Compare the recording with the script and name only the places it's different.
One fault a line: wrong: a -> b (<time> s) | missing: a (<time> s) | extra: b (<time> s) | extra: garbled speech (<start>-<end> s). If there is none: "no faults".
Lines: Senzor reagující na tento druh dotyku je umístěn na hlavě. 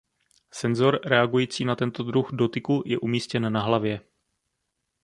no faults